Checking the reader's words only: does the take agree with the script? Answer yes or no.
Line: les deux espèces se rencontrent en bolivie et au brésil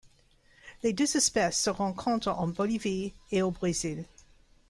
yes